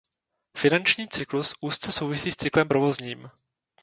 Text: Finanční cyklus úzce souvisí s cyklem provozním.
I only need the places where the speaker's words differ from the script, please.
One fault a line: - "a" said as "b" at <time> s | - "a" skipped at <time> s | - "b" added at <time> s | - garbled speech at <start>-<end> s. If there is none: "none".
none